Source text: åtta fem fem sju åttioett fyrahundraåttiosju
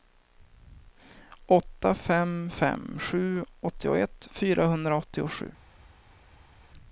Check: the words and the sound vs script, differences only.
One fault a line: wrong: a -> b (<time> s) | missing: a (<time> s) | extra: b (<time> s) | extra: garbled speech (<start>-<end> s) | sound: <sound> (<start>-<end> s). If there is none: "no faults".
no faults